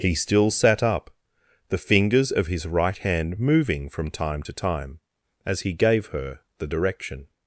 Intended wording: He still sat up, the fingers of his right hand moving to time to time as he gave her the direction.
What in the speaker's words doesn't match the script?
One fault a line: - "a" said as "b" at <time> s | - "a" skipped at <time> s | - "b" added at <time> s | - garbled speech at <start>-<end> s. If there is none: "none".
- "to" said as "from" at 3.9 s